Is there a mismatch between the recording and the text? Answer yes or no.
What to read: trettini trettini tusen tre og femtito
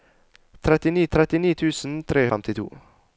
no